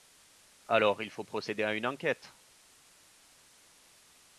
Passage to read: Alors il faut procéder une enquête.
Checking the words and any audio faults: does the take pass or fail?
fail